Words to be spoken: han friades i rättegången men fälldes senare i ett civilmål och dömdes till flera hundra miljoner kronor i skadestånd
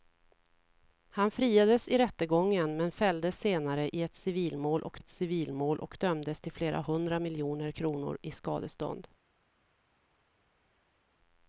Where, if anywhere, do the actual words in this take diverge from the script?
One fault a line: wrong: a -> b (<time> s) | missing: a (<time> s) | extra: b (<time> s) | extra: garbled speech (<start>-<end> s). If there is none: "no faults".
extra: ett civilmål och (5.0 s)